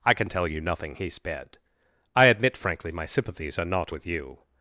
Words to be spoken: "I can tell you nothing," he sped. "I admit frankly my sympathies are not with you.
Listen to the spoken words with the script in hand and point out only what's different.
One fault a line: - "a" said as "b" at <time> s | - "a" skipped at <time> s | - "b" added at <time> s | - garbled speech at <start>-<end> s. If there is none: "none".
none